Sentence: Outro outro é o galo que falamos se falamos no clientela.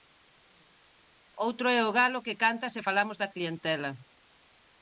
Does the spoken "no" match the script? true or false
false